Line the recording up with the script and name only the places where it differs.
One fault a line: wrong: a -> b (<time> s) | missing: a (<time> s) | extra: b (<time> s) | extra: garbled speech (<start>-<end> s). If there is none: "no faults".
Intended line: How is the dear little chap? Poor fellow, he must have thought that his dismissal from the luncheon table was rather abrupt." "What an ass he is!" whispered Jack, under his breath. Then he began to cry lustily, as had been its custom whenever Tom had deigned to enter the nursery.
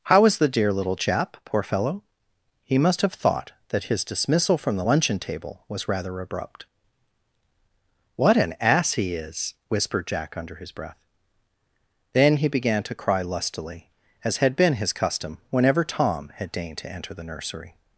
wrong: its -> his (14.7 s)